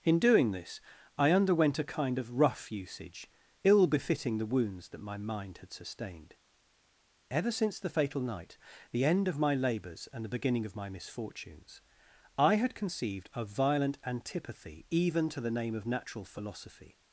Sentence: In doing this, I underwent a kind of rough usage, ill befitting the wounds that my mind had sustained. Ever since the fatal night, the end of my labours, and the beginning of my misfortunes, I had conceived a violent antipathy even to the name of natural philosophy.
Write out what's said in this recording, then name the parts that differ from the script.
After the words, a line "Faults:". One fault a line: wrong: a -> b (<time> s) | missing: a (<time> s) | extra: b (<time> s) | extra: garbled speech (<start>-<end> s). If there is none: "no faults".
In doing this, I underwent a kind of rough usage, ill befitting the wounds that my mind had sustained. Ever since the fatal night, the end of my labours, and the beginning of my misfortunes, I had conceived a violent antipathy even to the name of natural philosophy.
Faults:
no faults